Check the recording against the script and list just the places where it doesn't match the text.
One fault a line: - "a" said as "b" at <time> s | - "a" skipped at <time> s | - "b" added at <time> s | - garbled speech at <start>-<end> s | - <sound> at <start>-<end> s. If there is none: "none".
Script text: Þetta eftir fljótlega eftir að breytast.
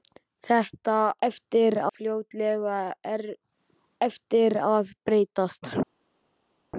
none